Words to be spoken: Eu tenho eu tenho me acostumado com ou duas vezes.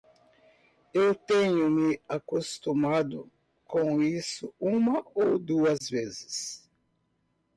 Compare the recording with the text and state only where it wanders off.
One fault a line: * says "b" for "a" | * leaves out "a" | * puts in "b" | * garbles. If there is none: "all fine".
* leaves out "eu tenho"
* puts in "isso uma"